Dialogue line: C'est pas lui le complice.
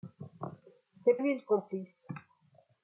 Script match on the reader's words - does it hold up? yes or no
no